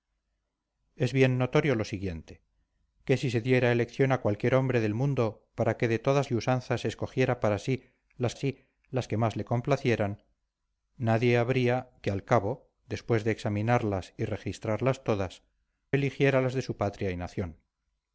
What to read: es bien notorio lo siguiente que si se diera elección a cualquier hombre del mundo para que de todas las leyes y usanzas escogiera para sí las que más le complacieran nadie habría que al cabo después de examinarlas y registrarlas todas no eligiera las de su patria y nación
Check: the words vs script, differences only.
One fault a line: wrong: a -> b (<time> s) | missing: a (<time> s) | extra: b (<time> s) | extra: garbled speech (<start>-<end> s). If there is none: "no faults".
missing: las leyes (6.3 s)
extra: sí las (8.3 s)
missing: no (15.4 s)